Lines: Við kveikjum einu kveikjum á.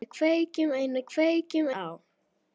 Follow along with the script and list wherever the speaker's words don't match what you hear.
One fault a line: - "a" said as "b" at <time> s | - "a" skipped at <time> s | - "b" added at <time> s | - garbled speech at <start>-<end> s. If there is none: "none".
none